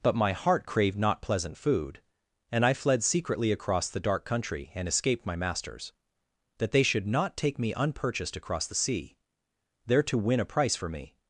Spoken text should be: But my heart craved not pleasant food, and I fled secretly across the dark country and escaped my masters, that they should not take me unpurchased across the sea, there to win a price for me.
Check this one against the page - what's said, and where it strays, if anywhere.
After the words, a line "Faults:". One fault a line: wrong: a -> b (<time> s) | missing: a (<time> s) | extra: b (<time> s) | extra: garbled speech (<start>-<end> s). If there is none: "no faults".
But my heart craved not pleasant food, and I fled secretly across the dark country and escaped my masters, that they should not take me unpurchased across the sea, there to win a price for me.
Faults:
no faults